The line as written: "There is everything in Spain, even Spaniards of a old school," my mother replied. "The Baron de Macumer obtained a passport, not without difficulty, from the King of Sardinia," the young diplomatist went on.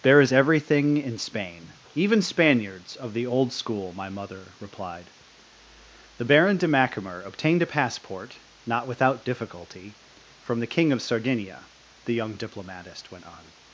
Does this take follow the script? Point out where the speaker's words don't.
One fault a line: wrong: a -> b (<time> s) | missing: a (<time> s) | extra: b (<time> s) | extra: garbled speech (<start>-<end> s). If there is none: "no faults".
wrong: a -> the (3.1 s)